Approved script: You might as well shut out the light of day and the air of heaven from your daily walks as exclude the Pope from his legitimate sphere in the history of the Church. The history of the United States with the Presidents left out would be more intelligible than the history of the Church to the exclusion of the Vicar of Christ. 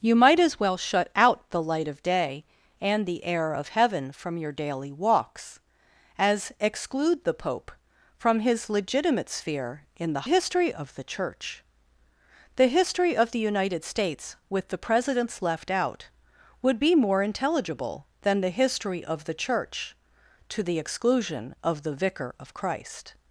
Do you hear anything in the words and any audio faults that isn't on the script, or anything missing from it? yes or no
no